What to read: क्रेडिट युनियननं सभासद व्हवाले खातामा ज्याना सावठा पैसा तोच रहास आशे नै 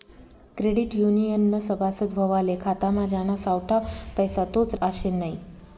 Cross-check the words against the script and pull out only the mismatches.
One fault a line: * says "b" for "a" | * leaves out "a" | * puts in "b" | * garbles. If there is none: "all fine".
* leaves out "रहास"